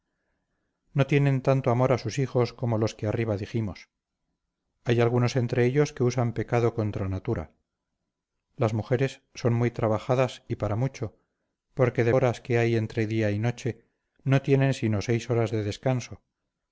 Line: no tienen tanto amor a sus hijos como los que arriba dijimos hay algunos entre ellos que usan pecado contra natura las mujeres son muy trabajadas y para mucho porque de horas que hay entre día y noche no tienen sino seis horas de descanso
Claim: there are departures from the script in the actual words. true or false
false